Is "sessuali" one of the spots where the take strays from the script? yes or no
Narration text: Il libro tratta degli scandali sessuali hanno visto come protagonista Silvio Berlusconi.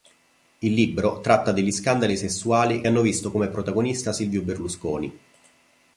no